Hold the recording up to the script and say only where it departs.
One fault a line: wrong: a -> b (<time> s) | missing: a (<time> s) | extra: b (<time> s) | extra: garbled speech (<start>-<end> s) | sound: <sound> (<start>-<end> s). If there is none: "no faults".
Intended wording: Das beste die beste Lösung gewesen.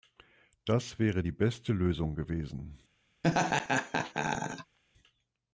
wrong: beste -> wäre (1.0 s)
sound: laugh (3.2-4.8 s)